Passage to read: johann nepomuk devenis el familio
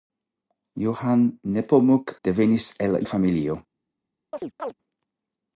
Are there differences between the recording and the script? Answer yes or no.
no